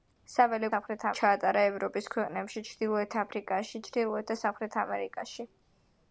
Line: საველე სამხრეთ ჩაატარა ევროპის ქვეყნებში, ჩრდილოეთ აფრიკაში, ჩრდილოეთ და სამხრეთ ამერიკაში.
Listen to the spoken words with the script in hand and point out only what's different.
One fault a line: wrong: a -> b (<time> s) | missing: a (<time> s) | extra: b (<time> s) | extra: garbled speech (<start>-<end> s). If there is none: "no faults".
no faults